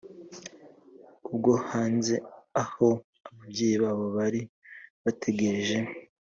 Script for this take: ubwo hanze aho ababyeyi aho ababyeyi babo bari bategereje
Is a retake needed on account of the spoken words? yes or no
yes